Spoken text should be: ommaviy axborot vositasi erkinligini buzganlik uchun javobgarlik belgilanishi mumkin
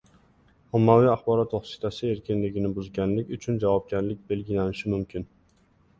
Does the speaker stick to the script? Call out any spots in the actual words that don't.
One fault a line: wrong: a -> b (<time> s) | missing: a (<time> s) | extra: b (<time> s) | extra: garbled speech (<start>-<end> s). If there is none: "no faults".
no faults